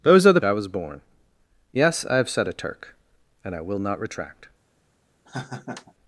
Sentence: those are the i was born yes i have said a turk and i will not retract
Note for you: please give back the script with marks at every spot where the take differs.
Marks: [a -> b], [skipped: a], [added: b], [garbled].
those are the i was born yes i have said a turk and i will not retract